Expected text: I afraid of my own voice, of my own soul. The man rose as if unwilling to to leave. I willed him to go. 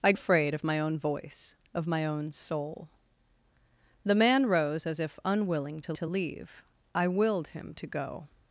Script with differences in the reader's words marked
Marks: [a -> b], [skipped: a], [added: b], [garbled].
I afraid of my own voice, of my own soul. The man rose as if unwilling to to leave. I willed him to go.